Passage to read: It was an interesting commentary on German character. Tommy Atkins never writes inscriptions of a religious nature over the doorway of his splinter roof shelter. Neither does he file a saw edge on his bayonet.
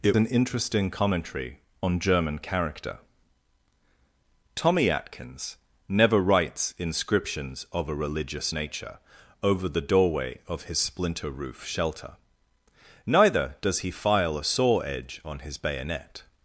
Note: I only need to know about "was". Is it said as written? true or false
false